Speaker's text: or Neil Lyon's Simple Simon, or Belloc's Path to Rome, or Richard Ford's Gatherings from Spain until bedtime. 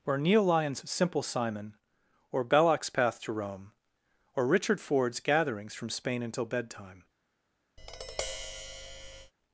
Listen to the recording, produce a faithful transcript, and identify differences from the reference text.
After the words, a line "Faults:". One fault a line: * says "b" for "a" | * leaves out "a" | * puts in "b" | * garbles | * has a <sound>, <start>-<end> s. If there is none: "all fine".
or Neil Lyon's Simple Simon, or Belloc's Path to Rome, or Richard Ford's Gatherings from Spain until bedtime.
Faults:
* has a tap, 7.8-9.3 s